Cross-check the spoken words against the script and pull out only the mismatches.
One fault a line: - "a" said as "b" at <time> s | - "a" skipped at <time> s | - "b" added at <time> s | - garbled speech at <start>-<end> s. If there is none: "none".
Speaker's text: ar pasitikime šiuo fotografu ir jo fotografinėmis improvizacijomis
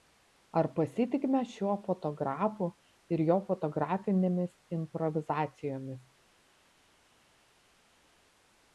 none